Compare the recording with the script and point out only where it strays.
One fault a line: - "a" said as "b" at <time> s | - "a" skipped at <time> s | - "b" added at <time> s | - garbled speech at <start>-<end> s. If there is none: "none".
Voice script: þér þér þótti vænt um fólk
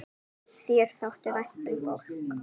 - "þér" skipped at 0.9 s